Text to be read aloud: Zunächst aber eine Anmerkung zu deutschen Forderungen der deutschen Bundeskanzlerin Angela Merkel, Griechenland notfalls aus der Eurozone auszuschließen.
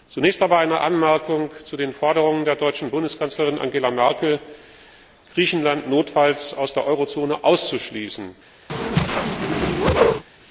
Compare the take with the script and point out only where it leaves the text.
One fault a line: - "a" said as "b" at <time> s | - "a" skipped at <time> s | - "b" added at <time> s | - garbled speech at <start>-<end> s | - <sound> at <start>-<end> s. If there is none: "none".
- "deutschen" said as "den" at 1.8 s
- whoosh at 8.7-10.2 s